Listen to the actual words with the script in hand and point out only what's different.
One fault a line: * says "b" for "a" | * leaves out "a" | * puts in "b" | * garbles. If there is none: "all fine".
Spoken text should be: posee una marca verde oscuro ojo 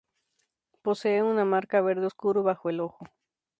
* puts in "bajo el"